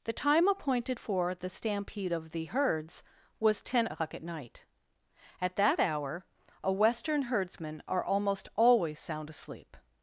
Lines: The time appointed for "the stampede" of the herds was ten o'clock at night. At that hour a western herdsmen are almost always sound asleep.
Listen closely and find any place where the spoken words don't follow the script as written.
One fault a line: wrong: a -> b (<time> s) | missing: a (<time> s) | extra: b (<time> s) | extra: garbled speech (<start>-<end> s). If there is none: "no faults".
no faults